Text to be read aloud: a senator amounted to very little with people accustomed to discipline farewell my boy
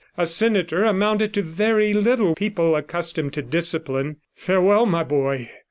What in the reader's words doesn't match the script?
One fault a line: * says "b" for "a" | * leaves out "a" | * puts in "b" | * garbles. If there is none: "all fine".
* leaves out "with"